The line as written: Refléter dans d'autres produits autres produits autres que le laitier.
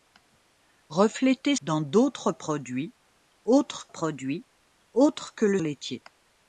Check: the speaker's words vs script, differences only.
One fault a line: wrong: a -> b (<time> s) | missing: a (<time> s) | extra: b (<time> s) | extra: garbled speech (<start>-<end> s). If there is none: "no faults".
no faults